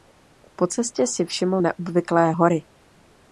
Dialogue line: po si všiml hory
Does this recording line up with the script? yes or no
no